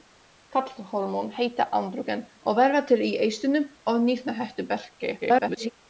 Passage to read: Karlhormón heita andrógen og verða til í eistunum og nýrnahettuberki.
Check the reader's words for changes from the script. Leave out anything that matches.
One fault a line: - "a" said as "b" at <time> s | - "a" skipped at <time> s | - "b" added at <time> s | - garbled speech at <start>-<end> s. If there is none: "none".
- garbled speech at 5.2-5.7 s